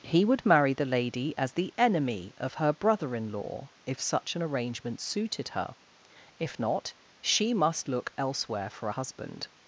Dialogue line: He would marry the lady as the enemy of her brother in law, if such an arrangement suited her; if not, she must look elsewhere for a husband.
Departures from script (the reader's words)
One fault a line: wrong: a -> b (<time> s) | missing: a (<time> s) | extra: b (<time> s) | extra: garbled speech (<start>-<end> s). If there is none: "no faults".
no faults